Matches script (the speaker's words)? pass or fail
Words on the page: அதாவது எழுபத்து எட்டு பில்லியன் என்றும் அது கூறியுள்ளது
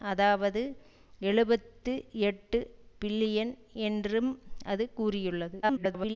fail